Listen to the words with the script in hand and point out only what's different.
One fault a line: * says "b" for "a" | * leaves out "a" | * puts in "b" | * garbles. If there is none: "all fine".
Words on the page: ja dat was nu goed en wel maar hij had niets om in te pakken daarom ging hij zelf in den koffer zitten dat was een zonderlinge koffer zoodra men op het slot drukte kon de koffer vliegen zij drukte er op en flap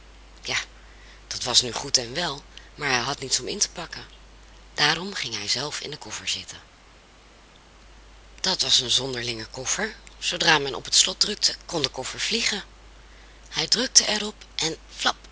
* says "hij" for "zij"